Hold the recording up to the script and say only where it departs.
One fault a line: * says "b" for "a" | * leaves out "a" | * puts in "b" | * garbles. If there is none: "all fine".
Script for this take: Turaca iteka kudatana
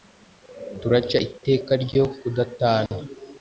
* puts in "ryo"